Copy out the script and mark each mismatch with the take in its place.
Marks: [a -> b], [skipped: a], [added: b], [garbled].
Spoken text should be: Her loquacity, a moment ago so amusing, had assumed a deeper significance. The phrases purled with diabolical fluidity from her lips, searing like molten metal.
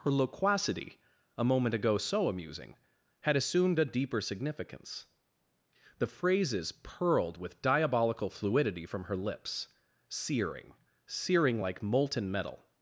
Her loquacity, a moment ago so amusing, had assumed a deeper significance. The phrases purled with diabolical fluidity from her lips, searing [added: searing] like molten metal.